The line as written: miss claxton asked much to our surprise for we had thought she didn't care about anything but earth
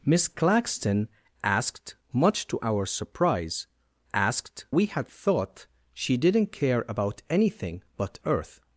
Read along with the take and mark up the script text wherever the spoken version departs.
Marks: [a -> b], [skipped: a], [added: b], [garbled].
miss claxton asked much to our surprise [for -> asked] we had thought she didn't care about anything but earth